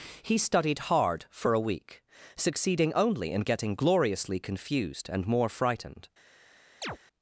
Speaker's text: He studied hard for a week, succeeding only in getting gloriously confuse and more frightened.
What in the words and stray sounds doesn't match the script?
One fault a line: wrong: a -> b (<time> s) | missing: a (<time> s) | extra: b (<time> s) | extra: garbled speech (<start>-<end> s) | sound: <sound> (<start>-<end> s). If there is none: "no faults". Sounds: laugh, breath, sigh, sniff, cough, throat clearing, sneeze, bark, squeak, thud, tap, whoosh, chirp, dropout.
wrong: confuse -> confused (4.4 s)
sound: chirp (6.8-7.0 s)